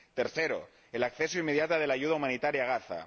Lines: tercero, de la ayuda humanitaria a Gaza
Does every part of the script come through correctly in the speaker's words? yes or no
no